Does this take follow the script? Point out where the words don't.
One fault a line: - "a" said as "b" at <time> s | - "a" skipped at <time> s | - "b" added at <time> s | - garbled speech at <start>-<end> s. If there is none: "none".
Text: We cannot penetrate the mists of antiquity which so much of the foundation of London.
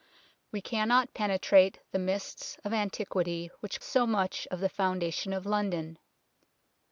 none